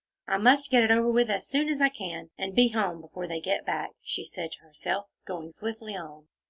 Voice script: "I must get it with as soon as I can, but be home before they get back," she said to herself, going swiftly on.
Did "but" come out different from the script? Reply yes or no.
yes